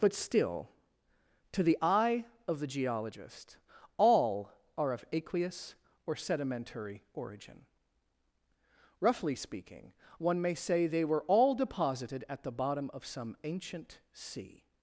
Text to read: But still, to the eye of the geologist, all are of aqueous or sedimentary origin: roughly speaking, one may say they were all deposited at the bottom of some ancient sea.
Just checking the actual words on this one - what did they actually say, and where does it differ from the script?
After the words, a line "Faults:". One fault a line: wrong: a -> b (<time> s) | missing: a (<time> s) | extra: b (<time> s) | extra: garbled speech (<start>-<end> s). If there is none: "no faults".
But still, to the eye of the geologist, all are of aqueous or sedimentary origin: roughly speaking, one may say they were all deposited at the bottom of some ancient sea.
Faults:
no faults